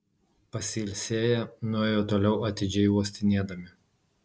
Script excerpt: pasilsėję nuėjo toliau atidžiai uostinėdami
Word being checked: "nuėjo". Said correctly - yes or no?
yes